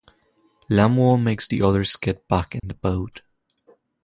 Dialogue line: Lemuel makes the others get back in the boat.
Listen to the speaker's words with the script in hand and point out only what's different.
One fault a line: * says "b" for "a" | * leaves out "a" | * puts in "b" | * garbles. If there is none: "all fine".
all fine